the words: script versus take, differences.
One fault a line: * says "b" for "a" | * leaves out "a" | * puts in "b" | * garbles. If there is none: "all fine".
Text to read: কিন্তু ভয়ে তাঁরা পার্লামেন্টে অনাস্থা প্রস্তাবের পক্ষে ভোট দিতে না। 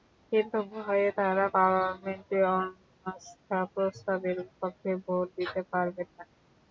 * puts in "পারবেন"